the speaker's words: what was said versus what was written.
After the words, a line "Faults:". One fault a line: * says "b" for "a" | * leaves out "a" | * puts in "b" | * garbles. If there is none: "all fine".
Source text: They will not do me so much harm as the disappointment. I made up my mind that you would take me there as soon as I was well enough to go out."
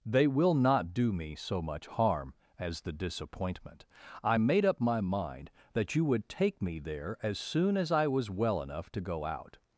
They will not do me so much harm as the disappointment. I made up my mind that you would take me there as soon as I was well enough to go out."
Faults:
all fine